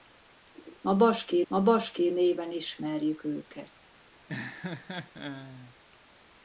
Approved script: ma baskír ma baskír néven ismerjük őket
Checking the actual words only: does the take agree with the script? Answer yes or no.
yes